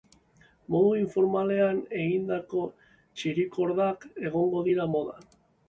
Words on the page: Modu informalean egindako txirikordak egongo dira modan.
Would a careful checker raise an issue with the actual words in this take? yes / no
no